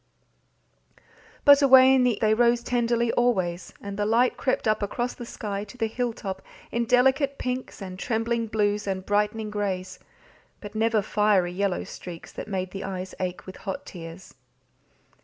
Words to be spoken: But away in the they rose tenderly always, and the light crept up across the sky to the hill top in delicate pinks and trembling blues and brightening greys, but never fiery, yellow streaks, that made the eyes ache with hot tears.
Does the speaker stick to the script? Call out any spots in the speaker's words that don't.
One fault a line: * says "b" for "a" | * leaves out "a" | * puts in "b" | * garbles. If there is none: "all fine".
all fine